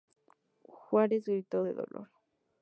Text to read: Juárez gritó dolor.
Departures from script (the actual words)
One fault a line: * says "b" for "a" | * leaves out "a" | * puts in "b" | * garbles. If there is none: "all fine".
* puts in "de"